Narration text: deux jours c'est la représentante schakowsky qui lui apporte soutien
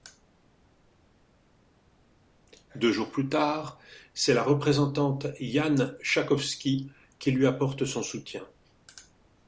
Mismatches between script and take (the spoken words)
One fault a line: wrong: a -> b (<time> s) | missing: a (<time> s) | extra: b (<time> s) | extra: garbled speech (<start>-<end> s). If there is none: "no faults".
extra: plus tard (3.1 s)
extra: jan (5.4 s)
extra: son (7.8 s)